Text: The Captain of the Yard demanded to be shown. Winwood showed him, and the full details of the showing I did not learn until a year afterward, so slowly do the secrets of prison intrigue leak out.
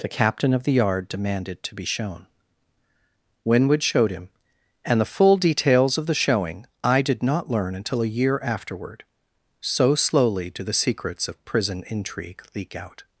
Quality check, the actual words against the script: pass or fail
pass